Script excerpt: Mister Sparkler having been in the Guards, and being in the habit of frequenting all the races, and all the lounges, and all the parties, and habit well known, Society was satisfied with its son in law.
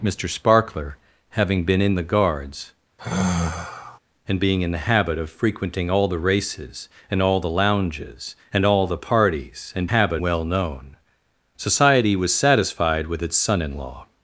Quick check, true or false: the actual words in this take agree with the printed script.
true